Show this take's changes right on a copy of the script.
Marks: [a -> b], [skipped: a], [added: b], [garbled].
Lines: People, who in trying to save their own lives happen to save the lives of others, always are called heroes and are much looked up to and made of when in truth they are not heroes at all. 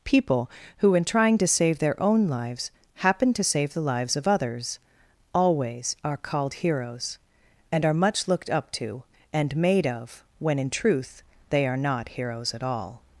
People, who in trying to save their own lives happen to save the lives of others, always are called heroes and are much looked up to and made of when in truth they are not heroes at all.